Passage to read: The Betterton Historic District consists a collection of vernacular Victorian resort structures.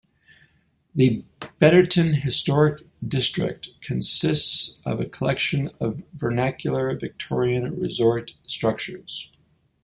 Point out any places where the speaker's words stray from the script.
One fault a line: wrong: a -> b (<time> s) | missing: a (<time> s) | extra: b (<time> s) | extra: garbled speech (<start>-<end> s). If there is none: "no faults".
extra: of (4.8 s)